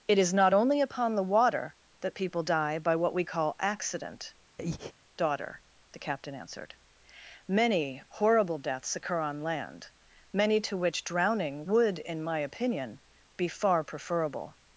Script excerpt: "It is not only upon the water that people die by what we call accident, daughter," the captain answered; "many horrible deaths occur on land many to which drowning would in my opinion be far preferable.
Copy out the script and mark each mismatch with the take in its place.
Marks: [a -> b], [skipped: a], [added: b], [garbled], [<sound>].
"It is not only upon the water that people die by what we call accident, [breath] daughter," the captain answered; "many horrible deaths occur on land many to which drowning would in my opinion be far preferable.